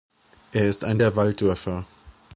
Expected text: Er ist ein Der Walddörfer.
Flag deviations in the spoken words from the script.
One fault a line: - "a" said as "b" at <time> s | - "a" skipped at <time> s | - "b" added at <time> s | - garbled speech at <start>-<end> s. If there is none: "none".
none